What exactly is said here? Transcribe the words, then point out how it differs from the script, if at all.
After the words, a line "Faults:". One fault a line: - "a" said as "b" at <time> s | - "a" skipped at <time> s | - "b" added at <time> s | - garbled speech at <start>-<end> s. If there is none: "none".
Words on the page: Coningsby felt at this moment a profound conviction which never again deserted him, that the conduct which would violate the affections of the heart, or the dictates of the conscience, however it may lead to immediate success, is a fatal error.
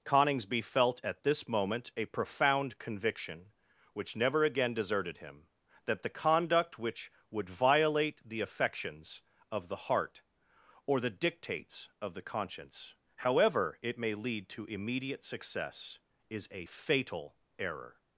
Coningsby felt at this moment a profound conviction which never again deserted him, that the conduct which would violate the affections of the heart, or the dictates of the conscience, however it may lead to immediate success, is a fatal error.
Faults:
none